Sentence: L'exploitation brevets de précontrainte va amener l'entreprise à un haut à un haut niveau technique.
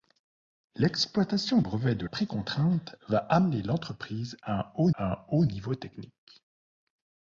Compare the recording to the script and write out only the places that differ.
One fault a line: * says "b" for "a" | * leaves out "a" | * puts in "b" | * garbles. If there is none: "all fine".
all fine